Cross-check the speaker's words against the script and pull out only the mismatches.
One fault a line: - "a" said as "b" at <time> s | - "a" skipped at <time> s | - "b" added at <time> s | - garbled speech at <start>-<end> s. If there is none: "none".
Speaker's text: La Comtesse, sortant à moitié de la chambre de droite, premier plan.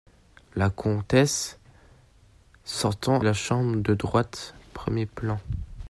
- "à moitié de" skipped at 3.2 s